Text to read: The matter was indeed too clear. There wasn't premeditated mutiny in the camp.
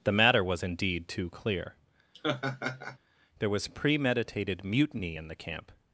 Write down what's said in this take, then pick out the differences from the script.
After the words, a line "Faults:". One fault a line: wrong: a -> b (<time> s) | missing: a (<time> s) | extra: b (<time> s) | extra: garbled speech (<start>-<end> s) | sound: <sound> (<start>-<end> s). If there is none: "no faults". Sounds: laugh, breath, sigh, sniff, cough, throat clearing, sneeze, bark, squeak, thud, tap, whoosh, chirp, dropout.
The matter was indeed too clear. There was premeditated mutiny in the camp.
Faults:
sound: laugh (2.1-3.0 s)
wrong: wasn't -> was (3.5 s)